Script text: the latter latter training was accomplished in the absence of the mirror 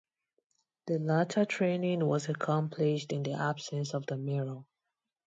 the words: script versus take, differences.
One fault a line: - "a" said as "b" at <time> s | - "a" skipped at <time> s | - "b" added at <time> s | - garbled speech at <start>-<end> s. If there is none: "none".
- "latter" skipped at 1.4 s